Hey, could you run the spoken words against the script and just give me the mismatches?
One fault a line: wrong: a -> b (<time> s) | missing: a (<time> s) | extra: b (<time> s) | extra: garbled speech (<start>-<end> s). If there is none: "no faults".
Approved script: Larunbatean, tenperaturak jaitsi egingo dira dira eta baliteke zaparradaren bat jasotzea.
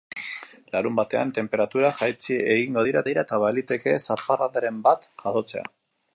no faults